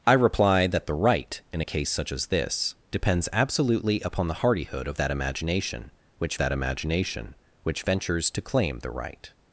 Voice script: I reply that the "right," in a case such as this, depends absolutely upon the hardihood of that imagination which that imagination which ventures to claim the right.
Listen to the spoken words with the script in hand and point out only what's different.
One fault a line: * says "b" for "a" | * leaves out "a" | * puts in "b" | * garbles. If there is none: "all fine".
all fine